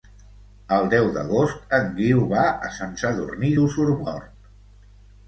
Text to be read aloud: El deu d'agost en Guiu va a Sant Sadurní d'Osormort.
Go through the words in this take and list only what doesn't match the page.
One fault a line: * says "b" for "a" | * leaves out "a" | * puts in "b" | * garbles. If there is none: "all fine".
all fine